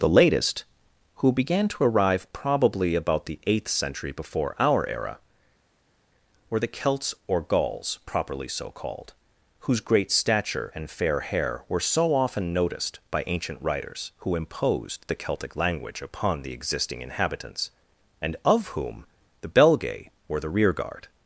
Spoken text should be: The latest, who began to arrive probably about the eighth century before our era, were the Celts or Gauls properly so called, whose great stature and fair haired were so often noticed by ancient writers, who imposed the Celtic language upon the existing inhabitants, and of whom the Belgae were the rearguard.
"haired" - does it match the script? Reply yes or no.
no